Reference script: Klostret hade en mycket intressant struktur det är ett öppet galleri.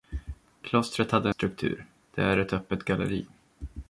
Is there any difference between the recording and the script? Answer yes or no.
yes